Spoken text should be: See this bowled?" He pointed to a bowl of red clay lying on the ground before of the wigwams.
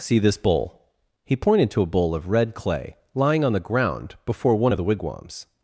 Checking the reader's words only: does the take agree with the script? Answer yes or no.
no